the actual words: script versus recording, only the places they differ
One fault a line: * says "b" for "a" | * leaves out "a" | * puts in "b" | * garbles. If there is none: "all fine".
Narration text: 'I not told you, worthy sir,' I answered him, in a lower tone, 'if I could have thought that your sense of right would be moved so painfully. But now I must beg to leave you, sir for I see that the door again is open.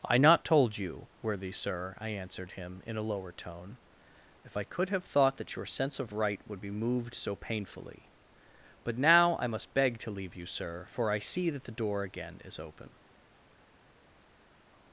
all fine